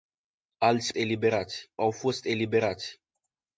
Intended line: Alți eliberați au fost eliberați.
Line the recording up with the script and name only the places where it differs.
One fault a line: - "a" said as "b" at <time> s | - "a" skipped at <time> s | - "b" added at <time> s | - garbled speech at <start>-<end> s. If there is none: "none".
none